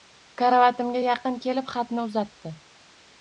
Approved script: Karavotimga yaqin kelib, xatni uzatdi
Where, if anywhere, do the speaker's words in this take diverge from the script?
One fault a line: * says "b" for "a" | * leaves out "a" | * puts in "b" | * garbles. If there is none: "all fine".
all fine